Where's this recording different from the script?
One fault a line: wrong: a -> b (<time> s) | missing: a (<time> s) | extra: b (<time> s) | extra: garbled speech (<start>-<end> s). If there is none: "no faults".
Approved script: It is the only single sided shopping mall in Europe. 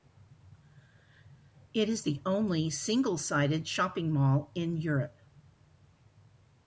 no faults